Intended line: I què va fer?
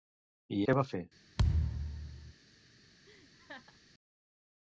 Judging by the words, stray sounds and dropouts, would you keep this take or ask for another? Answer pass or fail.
fail